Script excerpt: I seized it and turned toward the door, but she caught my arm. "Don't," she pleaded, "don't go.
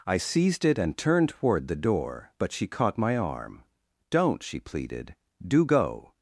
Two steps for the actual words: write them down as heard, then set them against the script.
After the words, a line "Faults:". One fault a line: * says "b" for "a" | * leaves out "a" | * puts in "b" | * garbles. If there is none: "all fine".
I seized it and turned toward the door, but she caught my arm. "Don't," she pleaded, "do go.
Faults:
* says "do" for "don't"